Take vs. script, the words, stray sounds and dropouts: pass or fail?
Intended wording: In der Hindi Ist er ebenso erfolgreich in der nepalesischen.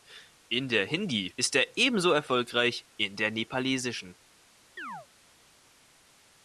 fail